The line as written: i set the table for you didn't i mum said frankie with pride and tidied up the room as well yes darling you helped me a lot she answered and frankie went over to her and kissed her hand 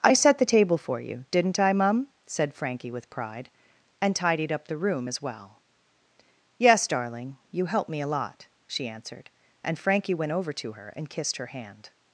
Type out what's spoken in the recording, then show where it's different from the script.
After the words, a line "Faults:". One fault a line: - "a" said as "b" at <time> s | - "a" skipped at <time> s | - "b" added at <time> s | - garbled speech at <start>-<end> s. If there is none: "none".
i set the table for you didn't i mum said frankie with pride and tidied up the room as well yes darling you helped me a lot she answered and frankie went over to her and kissed her hand
Faults:
none